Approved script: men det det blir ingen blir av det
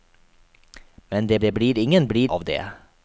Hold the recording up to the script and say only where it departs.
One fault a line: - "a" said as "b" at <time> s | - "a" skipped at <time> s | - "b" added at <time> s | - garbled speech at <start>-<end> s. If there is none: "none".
none